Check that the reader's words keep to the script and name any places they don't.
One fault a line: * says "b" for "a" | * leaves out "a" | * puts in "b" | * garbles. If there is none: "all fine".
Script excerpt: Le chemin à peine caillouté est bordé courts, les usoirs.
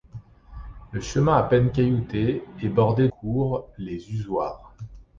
all fine